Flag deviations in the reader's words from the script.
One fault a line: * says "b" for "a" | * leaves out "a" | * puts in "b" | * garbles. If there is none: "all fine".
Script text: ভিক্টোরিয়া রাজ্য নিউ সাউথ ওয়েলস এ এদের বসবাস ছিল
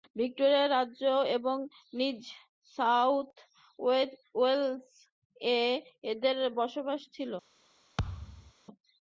* puts in "এবং"